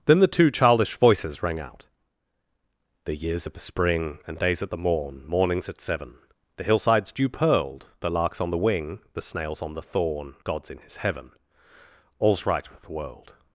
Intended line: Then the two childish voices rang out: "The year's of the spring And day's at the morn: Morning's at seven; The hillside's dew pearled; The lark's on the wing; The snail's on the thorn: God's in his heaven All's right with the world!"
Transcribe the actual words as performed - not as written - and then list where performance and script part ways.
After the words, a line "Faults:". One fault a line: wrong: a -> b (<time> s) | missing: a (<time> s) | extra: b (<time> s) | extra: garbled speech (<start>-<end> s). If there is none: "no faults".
Then the two childish voices rang out: "The year's of the spring And day's at the morn: Morning's at seven; The hillside's dew pearled; The lark's on the wing; The snail's on the thorn: God's in his heaven All's right with the world!"
Faults:
no faults